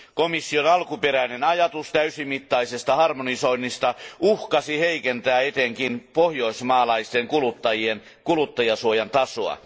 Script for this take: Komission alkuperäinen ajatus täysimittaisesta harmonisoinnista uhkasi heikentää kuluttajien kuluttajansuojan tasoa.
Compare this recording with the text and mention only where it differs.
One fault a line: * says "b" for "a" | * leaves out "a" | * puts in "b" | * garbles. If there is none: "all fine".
* puts in "etenkin pohjoismaalaisten"